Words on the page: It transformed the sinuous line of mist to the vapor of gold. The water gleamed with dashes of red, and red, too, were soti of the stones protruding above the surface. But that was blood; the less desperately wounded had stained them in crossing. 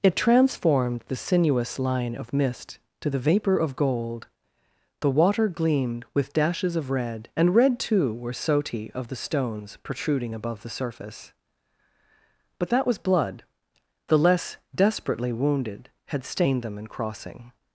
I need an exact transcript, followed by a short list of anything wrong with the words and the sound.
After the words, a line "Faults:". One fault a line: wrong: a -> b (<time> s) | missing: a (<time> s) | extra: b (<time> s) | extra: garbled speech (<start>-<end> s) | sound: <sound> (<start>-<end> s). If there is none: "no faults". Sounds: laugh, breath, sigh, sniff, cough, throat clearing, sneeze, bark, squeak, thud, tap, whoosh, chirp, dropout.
It transformed the sinuous line of mist to the vapor of gold. The water gleamed with dashes of red, and red, too, were soti of the stones protruding above the surface. But that was blood; the less desperately wounded had stained them in crossing.
Faults:
no faults